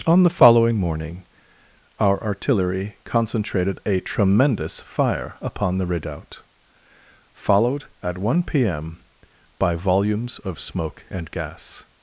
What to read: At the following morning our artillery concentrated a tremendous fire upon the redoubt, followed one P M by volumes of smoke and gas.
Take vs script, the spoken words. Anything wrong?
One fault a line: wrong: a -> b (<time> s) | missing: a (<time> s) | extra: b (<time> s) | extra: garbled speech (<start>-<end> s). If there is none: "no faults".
wrong: At -> On (0.1 s)
extra: at (8.0 s)